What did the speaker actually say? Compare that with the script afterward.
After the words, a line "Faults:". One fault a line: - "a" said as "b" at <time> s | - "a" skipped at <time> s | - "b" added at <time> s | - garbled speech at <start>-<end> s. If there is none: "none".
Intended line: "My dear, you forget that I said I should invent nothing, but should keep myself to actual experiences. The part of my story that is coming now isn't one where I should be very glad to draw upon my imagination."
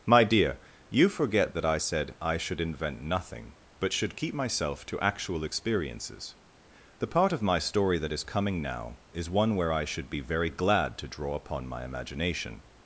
"My dear, you forget that I said I should invent nothing, but should keep myself to actual experiences. The part of my story that is coming now is one where I should be very glad to draw upon my imagination."
Faults:
- "isn't" said as "is" at 9.1 s